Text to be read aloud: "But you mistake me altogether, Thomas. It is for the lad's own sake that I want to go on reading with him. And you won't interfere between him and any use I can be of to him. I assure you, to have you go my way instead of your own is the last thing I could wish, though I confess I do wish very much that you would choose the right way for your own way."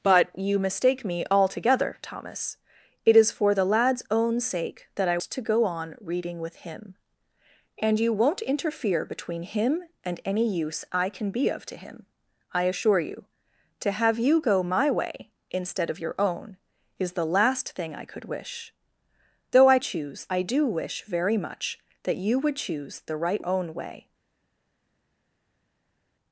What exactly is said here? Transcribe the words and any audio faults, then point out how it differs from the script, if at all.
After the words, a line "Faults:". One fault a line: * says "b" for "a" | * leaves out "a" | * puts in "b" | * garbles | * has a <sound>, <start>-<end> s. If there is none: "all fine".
"But you mistake me altogether, Thomas. It is for the lad's own sake that I to go on reading with him. And you won't interfere between him and any use I can be of to him. I assure you, to have you go my way instead of your own is the last thing I could wish, though I choose I do wish very much that you would choose the right own way."
Faults:
* leaves out "want"
* says "choose" for "confess"
* leaves out "way for your"